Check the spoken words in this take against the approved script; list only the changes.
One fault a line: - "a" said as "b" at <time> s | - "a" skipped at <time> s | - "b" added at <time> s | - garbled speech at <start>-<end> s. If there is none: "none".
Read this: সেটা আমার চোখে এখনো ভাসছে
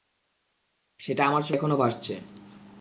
none